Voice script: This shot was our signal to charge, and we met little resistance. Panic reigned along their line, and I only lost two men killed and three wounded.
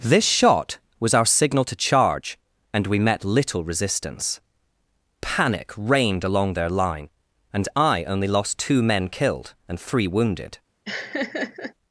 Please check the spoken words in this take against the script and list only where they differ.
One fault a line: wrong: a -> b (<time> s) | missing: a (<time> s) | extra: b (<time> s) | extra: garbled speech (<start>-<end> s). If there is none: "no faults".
no faults